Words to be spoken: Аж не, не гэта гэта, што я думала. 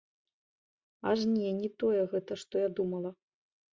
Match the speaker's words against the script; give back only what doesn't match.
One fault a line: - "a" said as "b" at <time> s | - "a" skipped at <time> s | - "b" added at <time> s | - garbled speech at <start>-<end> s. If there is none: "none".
- "гэта" said as "тое" at 1.8 s